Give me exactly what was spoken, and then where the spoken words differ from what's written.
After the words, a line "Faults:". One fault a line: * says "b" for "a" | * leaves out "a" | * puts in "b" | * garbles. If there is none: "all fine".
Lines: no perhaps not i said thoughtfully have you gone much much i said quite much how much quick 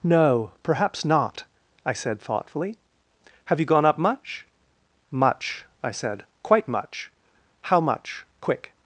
no perhaps not i said thoughtfully have you gone up much much i said quite much how much quick
Faults:
* puts in "up"